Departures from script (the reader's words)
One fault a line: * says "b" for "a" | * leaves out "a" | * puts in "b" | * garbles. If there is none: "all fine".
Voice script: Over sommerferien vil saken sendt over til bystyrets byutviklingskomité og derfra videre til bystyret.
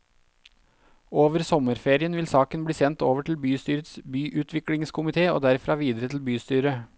* puts in "bli"